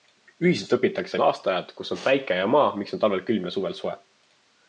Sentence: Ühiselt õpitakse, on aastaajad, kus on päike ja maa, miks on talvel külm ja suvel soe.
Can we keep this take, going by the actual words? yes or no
yes